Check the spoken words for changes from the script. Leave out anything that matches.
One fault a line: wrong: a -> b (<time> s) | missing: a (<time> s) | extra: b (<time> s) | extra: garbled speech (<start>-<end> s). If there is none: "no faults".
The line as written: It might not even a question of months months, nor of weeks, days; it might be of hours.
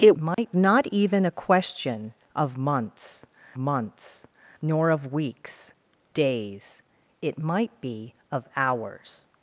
no faults